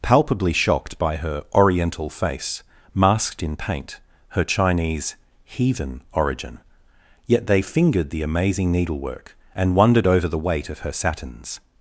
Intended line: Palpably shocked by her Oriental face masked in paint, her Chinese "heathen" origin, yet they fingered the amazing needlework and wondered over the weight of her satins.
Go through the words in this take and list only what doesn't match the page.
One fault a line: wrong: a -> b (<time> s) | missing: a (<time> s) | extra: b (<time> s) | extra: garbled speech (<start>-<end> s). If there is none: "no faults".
no faults